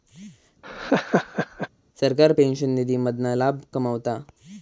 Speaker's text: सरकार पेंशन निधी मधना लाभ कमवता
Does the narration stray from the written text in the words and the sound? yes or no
yes